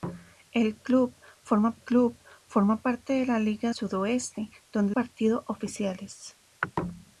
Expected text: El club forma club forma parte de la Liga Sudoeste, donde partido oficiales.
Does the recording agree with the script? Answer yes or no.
yes